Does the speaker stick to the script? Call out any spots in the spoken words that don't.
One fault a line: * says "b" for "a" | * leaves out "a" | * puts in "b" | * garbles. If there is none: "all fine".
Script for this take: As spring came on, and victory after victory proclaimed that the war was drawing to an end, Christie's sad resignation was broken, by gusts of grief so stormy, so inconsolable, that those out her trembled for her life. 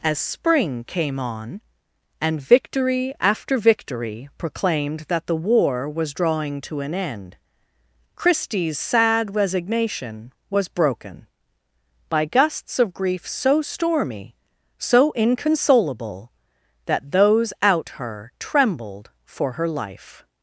all fine